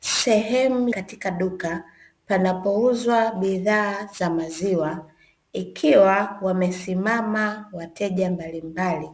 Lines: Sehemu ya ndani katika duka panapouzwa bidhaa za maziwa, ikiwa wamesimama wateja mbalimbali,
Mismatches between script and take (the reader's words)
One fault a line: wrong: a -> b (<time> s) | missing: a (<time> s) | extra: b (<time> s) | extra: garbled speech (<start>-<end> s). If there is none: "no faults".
missing: ya ndani (0.9 s)